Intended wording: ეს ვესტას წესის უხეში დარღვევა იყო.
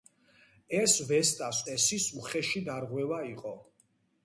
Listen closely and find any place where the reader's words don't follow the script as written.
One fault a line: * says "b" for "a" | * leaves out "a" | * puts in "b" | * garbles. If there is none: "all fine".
all fine